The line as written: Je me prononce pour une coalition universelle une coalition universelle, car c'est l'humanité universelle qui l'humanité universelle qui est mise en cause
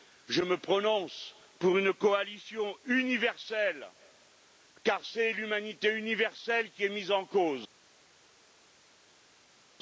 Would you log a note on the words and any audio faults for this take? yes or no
yes